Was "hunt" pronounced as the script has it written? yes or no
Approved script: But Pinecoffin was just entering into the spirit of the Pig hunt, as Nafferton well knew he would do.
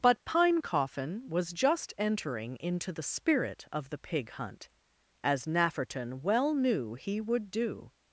yes